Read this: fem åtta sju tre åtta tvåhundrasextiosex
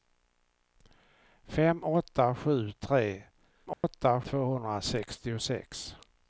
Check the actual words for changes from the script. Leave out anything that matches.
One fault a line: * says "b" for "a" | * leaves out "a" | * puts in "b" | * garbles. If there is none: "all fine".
all fine